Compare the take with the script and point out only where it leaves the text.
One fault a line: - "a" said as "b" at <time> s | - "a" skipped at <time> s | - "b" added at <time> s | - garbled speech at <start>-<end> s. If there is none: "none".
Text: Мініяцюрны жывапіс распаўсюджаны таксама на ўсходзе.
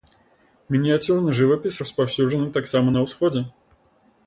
none